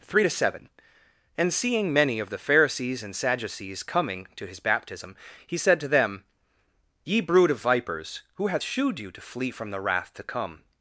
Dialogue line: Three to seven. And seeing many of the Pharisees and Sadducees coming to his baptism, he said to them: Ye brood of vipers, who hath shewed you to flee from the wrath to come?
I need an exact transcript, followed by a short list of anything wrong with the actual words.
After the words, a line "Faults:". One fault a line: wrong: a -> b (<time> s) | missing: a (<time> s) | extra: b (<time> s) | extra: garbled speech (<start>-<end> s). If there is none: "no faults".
Three to seven. And seeing many of the Pharisees and Sadducees coming to his baptism, he said to them: Ye brood of vipers, who hath shewed you to flee from the wrath to come?
Faults:
no faults